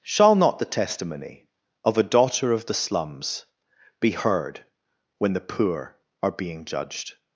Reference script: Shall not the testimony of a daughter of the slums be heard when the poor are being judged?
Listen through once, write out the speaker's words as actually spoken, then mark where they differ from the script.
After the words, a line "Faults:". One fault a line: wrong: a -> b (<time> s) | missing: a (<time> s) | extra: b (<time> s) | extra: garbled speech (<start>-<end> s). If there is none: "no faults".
Shall not the testimony of a daughter of the slums be heard when the poor are being judged?
Faults:
no faults